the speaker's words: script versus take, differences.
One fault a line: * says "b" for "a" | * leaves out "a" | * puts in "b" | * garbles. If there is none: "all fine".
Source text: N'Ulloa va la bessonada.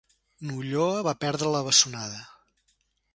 * puts in "perdre"